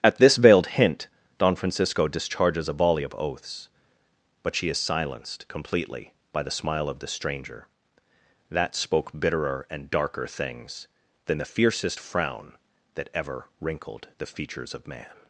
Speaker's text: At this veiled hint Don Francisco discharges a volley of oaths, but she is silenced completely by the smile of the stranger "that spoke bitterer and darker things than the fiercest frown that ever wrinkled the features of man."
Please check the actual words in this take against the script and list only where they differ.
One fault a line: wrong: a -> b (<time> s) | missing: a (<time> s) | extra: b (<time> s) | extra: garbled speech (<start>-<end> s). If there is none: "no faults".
no faults